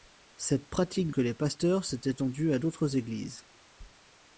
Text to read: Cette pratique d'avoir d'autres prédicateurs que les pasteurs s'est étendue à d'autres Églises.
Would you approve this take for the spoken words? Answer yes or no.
no